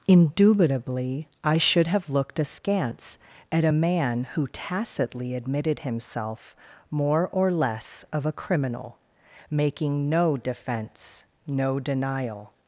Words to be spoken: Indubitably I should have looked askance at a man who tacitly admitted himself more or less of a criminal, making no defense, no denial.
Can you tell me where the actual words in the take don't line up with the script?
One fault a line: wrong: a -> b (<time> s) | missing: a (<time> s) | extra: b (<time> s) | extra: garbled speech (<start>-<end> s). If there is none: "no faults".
no faults